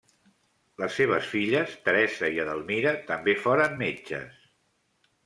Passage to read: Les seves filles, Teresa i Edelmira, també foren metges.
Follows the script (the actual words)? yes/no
yes